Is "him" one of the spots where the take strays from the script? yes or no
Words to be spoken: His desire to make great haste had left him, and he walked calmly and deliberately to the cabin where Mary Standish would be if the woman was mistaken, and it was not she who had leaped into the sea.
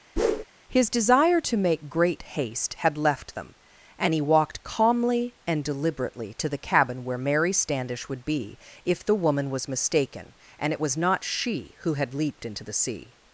yes